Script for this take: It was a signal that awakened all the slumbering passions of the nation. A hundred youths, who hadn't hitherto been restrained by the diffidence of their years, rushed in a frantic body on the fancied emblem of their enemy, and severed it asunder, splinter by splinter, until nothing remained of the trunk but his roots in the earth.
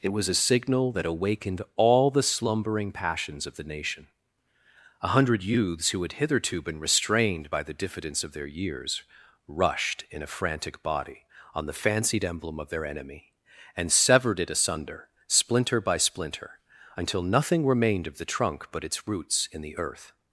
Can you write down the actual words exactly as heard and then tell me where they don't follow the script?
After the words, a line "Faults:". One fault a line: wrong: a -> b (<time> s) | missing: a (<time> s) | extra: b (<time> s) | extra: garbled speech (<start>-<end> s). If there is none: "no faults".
It was a signal that awakened all the slumbering passions of the nation. A hundred youths, who had hitherto been restrained by the diffidence of their years, rushed in a frantic body on the fancied emblem of their enemy, and severed it asunder, splinter by splinter, until nothing remained of the trunk but its roots in the earth.
Faults:
wrong: hadn't -> had (6.0 s)
wrong: his -> its (18.8 s)